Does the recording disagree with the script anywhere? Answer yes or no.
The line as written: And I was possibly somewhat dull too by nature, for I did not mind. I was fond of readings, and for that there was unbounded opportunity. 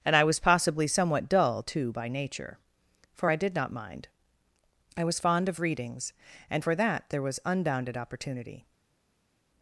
no